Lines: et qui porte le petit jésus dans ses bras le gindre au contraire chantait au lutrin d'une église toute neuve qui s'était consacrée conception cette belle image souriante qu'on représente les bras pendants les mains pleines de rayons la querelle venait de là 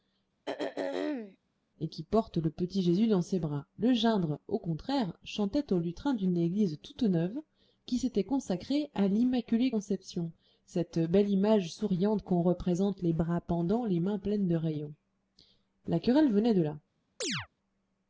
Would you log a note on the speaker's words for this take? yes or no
yes